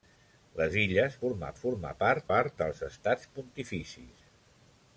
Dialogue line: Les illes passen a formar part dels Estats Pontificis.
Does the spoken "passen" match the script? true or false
false